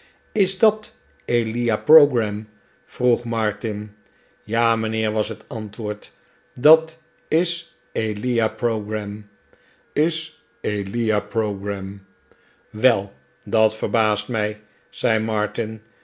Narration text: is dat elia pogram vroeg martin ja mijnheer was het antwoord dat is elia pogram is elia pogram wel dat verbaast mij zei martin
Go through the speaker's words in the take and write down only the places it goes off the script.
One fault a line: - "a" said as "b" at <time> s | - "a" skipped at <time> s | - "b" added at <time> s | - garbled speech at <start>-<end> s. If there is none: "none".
none